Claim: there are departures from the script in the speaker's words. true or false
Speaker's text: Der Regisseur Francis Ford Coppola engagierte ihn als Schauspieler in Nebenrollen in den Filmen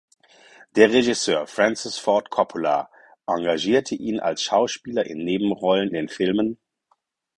true